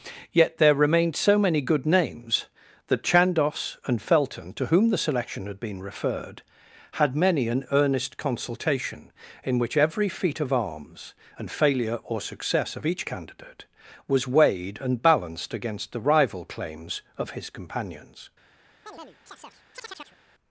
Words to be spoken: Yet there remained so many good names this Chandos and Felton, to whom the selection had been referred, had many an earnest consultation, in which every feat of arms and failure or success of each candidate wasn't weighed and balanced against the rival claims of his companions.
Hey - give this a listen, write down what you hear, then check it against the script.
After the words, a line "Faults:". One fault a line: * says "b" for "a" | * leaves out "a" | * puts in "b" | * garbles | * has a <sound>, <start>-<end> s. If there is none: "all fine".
Yet there remained so many good names that Chandos and Felton, to whom the selection had been referred, had many an earnest consultation, in which every feat of arms and failure or success of each candidate was weighed and balanced against the rival claims of his companions.
Faults:
* says "that" for "this"
* says "was" for "wasn't"
* has a chirp, 18.9-20.2 s